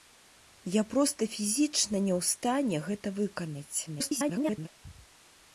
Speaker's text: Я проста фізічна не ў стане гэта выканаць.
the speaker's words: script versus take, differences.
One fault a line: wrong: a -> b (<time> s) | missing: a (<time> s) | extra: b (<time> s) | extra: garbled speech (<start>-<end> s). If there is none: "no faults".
extra: garbled speech (3.9-4.7 s)